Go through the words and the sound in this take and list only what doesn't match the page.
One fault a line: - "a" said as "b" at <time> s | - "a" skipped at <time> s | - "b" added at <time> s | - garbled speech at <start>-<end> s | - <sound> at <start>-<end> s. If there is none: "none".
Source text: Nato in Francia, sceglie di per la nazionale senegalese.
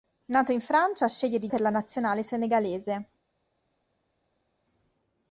none